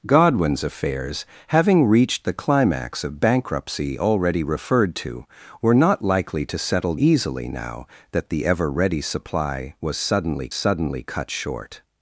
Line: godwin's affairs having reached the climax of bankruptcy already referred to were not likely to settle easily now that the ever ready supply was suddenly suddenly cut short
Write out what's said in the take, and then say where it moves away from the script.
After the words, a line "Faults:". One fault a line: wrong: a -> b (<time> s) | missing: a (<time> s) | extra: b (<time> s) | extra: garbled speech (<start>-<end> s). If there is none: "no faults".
godwin's affairs having reached the climax of bankruptcy already referred to were not likely to settle easily now that the ever ready supply was suddenly suddenly cut short
Faults:
no faults